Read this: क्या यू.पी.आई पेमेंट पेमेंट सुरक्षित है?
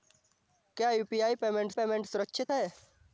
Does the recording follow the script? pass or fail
pass